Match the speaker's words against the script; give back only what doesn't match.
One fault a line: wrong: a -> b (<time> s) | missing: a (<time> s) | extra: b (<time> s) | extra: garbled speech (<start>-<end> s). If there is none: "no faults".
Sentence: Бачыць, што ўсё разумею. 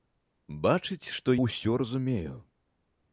no faults